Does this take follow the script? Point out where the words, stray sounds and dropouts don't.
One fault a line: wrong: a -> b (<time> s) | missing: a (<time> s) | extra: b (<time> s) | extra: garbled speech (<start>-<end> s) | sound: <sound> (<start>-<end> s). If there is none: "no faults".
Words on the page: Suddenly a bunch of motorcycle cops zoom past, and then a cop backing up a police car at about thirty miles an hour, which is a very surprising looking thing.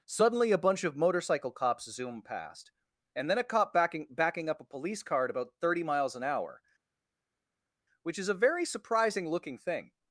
extra: backing (4.1 s)